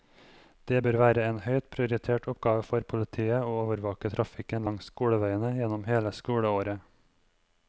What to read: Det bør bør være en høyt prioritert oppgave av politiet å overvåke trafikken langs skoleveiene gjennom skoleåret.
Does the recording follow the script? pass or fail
fail